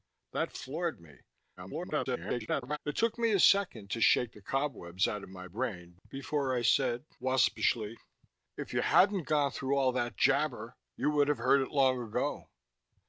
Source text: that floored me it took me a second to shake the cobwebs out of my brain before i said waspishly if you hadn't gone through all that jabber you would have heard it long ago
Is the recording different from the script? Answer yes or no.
yes